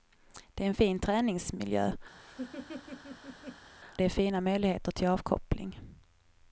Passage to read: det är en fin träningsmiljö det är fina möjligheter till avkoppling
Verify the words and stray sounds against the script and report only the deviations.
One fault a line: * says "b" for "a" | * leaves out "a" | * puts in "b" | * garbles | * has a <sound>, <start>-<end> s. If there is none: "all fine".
* has a laugh, 2.1-3.7 s